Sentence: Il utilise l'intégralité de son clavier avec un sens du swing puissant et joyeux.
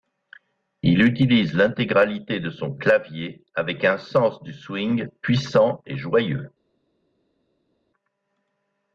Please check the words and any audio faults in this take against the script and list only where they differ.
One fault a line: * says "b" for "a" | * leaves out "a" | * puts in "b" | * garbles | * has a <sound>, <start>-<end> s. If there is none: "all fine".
all fine